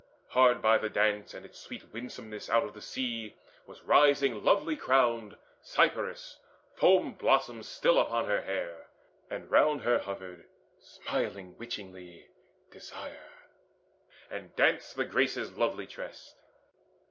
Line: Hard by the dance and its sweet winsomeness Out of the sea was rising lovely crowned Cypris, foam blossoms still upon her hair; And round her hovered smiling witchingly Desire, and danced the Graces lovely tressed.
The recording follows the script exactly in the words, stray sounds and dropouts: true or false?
true